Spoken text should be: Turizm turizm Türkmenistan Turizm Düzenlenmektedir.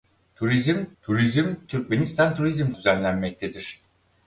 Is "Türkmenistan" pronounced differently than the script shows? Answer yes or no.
no